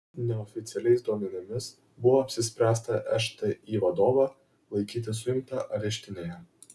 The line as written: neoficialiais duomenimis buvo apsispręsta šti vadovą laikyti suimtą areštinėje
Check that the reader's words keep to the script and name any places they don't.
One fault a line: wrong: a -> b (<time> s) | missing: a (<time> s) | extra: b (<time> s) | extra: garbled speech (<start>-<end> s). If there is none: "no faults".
no faults